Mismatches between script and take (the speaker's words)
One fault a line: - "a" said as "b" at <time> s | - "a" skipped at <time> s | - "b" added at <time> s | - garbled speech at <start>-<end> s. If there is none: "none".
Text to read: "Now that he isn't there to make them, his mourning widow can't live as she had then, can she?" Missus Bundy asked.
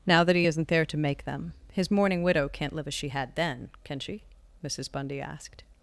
none